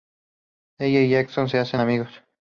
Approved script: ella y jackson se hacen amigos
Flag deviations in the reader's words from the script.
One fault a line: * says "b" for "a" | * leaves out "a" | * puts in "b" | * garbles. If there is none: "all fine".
all fine